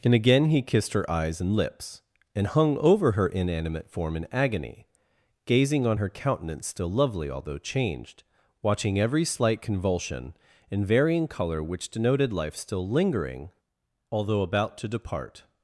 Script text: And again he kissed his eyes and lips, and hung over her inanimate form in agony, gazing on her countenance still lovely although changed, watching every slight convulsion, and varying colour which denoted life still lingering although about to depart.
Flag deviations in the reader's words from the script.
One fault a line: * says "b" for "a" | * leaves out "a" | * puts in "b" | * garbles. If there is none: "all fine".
* says "her" for "his"